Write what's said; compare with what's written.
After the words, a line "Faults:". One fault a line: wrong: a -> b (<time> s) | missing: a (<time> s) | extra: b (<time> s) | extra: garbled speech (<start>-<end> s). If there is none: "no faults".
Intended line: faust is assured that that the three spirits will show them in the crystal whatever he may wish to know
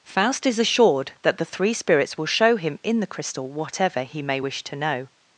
faust is assured that the three spirits will show him in the crystal whatever he may wish to know
Faults:
missing: that (1.4 s)
wrong: them -> him (2.5 s)